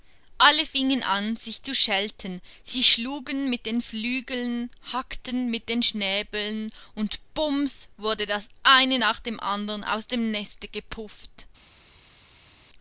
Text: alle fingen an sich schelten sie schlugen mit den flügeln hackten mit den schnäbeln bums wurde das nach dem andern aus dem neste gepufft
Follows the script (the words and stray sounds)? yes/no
no